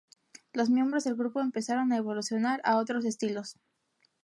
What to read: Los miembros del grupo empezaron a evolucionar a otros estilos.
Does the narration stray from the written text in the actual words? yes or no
no